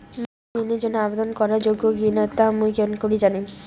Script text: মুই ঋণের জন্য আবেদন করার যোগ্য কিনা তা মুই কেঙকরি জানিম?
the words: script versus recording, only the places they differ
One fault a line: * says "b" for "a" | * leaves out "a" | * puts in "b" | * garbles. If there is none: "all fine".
all fine